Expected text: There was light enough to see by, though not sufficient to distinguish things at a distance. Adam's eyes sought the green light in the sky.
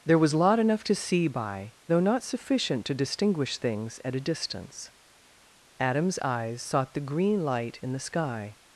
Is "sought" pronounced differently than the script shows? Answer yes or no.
no